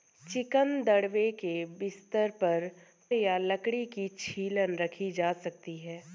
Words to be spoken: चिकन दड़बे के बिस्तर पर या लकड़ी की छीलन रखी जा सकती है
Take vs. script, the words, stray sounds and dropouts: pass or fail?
pass